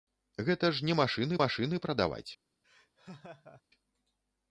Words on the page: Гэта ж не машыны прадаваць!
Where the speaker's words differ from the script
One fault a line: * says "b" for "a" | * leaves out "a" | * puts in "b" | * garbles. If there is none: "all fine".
* puts in "машыны"